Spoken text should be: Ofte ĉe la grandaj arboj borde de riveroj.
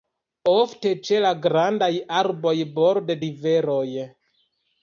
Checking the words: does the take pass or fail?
fail